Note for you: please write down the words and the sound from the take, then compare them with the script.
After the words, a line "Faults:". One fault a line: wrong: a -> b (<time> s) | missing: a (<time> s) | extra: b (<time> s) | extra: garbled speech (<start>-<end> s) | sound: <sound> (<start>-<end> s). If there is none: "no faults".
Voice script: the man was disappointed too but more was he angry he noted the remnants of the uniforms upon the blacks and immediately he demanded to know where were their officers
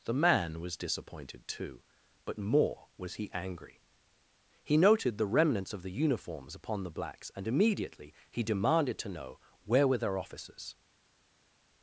the man was disappointed too but more was he angry he noted the remnants of the uniforms upon the blacks and immediately he demanded to know where were their officers
Faults:
no faults